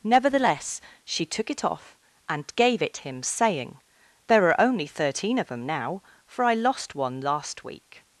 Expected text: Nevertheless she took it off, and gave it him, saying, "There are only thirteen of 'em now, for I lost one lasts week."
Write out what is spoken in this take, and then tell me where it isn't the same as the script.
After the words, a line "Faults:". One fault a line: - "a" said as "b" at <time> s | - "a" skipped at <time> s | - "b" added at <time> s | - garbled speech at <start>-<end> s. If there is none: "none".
Nevertheless she took it off, and gave it him, saying, "There are only thirteen of 'em now, for I lost one last week."
Faults:
- "lasts" said as "last" at 7.2 s